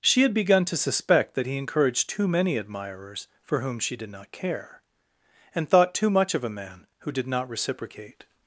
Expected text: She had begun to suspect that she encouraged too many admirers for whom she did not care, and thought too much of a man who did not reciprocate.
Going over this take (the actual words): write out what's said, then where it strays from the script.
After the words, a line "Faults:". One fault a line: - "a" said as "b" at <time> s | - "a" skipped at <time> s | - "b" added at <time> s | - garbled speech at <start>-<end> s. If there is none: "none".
She had begun to suspect that he encouraged too many admirers for whom she did not care, and thought too much of a man who did not reciprocate.
Faults:
- "she" said as "he" at 1.4 s